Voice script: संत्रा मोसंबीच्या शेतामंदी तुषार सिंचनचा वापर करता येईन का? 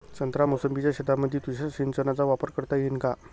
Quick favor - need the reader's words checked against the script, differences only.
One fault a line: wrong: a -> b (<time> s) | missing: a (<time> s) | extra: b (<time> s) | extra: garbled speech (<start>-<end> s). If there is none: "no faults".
no faults